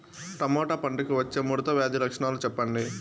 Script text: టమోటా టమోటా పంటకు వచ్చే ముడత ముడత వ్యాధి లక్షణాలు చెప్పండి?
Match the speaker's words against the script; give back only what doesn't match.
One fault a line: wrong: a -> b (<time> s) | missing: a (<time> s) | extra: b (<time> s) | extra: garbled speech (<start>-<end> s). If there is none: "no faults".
missing: టమోటా (0.8 s)
missing: ముడత (1.7 s)